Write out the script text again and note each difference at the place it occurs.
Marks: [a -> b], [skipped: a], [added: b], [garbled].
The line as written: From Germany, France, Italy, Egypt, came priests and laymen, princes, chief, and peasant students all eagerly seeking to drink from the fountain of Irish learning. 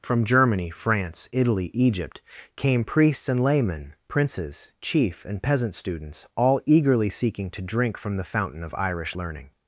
From Germany, France, Italy, Egypt, came priests and laymen, princes, chief, and peasant students all eagerly seeking to drink from the fountain of Irish learning.